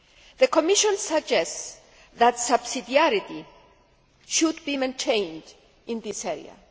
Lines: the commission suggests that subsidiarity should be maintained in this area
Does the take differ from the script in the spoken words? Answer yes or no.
no